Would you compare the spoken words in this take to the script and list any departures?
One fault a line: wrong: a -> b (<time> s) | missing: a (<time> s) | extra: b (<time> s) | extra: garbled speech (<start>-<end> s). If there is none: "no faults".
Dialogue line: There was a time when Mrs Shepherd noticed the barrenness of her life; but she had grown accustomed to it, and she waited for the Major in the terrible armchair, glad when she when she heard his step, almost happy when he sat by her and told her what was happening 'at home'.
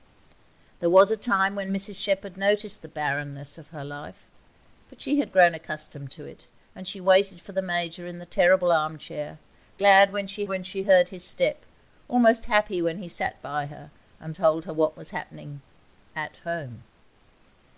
no faults